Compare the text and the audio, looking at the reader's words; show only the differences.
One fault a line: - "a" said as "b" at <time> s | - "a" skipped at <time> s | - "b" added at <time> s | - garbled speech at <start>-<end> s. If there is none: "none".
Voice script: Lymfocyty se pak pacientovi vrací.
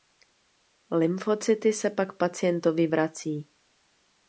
none